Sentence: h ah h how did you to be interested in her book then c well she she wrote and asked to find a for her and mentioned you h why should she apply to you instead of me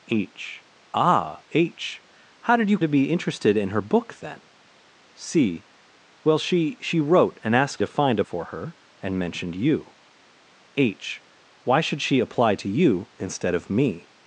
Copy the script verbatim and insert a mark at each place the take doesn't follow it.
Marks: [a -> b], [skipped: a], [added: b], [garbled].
h ah h how did you to be interested in her book then c well she she wrote and asked to find a for her and mentioned you h why should she apply to you instead of me